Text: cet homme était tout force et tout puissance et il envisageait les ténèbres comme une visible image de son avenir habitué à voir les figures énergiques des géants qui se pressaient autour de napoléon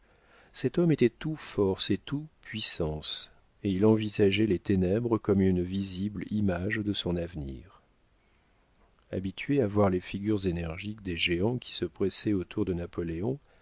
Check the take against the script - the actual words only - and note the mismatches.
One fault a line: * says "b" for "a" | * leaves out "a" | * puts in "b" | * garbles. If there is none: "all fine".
all fine